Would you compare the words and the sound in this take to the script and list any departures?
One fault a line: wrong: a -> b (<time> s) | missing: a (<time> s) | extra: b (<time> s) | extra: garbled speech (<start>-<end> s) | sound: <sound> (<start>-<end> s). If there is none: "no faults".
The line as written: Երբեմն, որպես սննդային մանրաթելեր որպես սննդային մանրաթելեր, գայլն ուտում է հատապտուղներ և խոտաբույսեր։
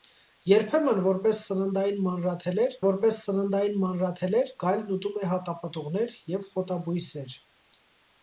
no faults